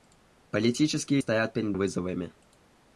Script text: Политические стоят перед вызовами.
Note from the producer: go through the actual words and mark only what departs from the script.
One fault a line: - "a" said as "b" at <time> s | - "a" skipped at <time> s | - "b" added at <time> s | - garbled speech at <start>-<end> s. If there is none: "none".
none